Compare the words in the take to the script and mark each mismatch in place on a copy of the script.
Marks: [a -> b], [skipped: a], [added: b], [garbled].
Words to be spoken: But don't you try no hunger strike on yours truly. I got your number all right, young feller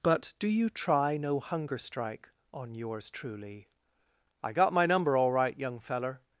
But [don't -> do] you try no hunger strike on yours truly. I got [your -> my] number all right, young feller